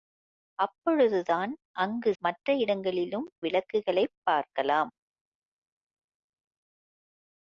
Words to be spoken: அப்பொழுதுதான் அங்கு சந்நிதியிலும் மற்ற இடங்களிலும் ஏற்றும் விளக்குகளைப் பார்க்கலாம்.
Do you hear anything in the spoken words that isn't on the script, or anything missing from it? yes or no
yes